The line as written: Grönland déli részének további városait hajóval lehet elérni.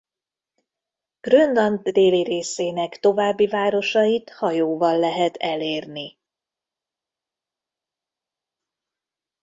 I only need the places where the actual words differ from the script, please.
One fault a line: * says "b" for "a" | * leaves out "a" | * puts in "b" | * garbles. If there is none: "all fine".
all fine